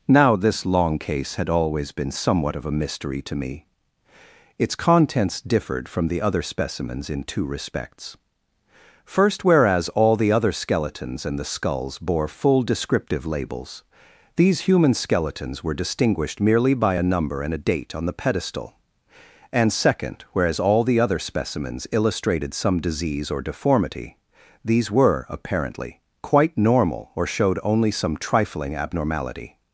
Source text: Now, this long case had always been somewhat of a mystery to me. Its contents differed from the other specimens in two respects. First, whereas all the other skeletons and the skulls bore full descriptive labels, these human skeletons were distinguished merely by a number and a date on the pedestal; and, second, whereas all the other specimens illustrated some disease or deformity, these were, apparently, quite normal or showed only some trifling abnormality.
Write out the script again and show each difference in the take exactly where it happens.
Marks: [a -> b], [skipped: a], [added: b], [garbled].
Now, this long case had always been somewhat of a mystery to me. Its contents differed from the other specimens in two respects. First, whereas all the other skeletons and the skulls bore full descriptive labels, these human skeletons were distinguished merely by a number and a date on the pedestal; and, second, whereas all the other specimens illustrated some disease or deformity, these were, apparently, quite normal or showed only some trifling abnormality.